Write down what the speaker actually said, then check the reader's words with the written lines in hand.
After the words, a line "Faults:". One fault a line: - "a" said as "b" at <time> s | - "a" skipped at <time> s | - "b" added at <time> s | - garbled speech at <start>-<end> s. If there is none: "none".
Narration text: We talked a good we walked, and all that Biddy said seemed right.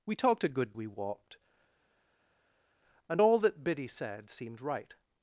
We talked a good we walked, and all that Biddy said seemed right.
Faults:
none